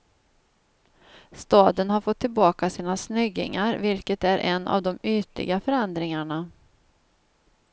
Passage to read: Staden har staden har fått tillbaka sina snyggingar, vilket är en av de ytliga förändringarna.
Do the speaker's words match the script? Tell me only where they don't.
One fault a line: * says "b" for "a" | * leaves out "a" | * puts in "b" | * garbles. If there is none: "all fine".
* leaves out "staden har"